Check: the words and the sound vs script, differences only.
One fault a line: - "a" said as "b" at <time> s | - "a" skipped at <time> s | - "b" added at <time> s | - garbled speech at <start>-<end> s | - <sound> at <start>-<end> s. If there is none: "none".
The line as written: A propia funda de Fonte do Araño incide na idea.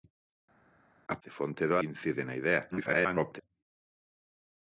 - "propia funda" skipped at 1.2 s
- "Araño" skipped at 1.8 s
- garbled speech at 2.7-3.4 s